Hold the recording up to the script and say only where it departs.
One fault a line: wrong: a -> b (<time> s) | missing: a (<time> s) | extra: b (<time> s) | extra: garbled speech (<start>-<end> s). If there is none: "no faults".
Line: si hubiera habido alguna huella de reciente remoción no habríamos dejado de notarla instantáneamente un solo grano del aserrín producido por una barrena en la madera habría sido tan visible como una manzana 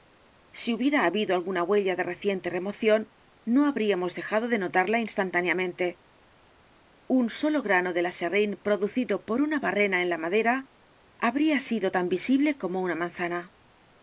no faults